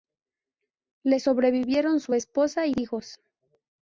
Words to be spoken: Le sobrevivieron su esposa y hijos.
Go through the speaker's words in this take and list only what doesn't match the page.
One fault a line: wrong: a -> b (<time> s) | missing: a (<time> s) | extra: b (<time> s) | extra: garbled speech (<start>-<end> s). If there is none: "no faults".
no faults